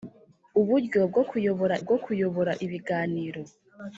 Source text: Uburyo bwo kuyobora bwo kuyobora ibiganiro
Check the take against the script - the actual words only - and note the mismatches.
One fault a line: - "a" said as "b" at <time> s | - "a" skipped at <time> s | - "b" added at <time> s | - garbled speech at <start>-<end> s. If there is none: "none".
none